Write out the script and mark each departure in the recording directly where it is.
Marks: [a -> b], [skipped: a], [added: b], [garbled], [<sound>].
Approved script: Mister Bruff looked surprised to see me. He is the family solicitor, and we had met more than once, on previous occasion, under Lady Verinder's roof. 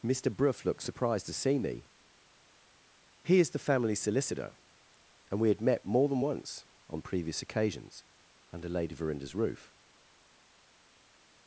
Mister Bruff looked surprised to see me. He is the family solicitor, and we had met more than once, on previous [occasion, -> occasions] under Lady Verinder's roof.